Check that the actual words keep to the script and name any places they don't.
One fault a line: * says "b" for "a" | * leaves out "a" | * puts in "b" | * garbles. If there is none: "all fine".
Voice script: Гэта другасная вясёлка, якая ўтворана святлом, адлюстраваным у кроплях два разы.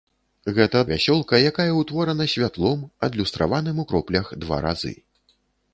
* leaves out "другасная"